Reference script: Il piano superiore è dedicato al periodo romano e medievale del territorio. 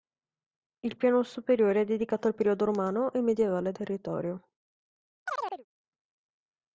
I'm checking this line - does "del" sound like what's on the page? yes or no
no